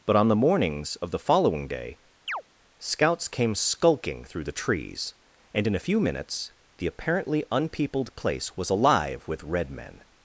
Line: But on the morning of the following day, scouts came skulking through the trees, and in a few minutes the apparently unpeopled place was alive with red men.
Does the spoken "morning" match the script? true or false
false